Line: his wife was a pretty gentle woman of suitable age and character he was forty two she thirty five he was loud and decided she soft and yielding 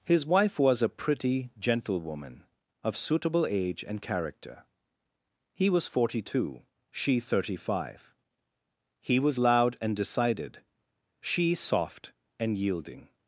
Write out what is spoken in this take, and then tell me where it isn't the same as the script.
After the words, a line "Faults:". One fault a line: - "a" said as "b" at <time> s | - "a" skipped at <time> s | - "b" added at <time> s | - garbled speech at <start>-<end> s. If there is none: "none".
his wife was a pretty gentle woman of suitable age and character he was forty two she thirty five he was loud and decided she soft and yielding
Faults:
none